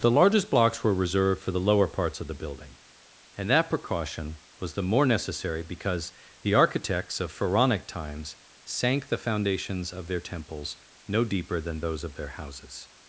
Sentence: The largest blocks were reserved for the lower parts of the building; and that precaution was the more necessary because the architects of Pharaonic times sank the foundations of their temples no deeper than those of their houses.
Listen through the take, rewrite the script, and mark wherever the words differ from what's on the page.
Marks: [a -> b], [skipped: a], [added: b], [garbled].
The largest blocks were reserved for the lower parts of the building; and that precaution was the more necessary because the architects of Pharaonic times sank the foundations of their temples no deeper than those of their houses.